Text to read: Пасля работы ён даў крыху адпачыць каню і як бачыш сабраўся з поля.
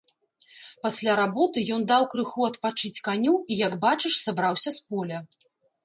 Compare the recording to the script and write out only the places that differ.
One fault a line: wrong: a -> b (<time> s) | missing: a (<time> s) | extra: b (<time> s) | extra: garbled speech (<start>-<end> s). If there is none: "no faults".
no faults